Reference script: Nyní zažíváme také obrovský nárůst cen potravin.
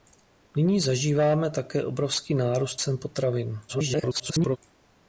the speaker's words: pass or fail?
fail